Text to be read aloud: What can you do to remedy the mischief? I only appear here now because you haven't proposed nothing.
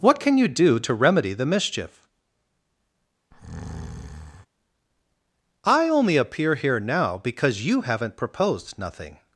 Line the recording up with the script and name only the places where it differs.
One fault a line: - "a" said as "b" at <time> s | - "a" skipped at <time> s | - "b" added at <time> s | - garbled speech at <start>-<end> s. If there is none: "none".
none